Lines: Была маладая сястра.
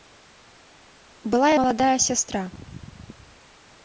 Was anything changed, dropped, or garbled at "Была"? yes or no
no